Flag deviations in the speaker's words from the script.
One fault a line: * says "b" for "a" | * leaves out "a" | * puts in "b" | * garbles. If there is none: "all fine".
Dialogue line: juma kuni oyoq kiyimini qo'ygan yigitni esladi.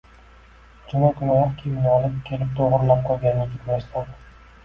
* puts in "olib kelib to'g'rilab"